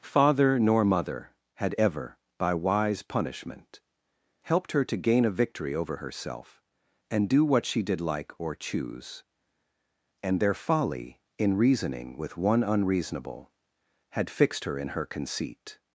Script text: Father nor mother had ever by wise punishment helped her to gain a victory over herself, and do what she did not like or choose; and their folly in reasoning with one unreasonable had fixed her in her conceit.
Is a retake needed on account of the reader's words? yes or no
yes